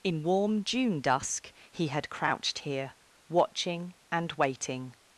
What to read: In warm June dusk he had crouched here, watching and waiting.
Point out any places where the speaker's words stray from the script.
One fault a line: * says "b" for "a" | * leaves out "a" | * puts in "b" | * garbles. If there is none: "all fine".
all fine